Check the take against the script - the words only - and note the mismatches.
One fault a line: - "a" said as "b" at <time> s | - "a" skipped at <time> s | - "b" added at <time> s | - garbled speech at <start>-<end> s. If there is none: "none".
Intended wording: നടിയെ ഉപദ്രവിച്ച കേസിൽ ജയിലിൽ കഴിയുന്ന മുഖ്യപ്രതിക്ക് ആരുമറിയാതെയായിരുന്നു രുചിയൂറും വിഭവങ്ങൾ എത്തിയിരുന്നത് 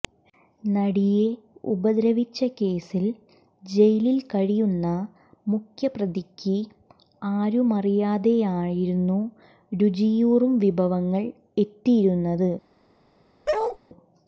none